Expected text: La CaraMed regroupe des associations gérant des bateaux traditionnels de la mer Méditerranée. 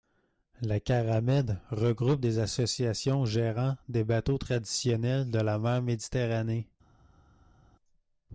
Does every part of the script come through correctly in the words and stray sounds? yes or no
yes